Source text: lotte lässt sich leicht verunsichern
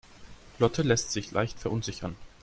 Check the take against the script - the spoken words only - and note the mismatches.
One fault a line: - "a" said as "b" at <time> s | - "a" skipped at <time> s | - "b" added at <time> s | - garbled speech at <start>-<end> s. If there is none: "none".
none